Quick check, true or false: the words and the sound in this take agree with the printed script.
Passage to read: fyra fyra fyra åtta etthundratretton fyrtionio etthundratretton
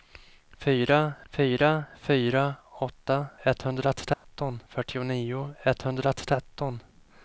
false